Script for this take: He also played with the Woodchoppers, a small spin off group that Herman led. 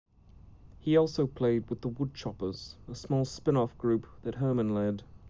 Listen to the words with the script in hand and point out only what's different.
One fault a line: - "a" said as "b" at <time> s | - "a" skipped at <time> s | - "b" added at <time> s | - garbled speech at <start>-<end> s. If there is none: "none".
none